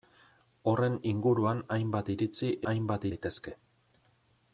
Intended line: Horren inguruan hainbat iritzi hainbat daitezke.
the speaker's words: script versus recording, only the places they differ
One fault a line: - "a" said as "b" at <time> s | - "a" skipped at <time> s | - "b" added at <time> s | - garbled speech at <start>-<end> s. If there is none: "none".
none